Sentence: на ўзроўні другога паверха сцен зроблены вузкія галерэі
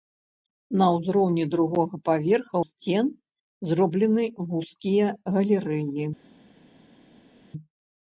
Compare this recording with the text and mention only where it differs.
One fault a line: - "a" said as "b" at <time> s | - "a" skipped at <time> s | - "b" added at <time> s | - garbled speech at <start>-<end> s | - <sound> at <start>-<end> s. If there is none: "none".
none